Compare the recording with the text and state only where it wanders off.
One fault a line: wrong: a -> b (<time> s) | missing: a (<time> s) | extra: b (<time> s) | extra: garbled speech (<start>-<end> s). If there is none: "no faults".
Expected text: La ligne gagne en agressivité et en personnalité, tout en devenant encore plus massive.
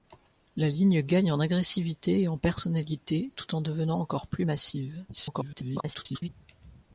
extra: garbled speech (5.1-6.3 s)